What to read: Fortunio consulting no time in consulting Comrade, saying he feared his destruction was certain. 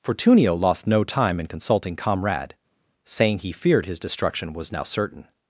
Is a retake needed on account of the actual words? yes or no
yes